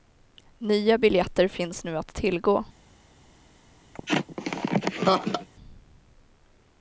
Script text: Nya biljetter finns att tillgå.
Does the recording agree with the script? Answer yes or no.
no